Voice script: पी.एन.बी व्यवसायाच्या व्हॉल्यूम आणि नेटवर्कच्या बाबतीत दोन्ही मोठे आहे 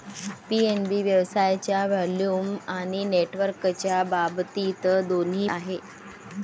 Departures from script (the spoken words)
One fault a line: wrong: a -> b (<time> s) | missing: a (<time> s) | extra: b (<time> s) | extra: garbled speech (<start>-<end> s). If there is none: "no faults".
missing: मोठे (5.5 s)